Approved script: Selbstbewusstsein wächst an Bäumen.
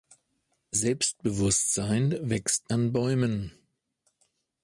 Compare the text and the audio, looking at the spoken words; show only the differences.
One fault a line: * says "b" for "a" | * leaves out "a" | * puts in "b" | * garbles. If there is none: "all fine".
all fine